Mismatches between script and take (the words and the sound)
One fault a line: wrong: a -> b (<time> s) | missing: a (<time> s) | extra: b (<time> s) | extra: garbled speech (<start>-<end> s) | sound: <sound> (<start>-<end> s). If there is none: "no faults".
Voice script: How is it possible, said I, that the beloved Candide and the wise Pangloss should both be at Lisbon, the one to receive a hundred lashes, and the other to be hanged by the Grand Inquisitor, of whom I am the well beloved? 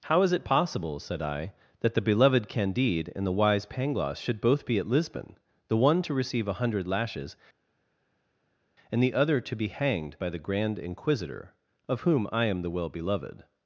no faults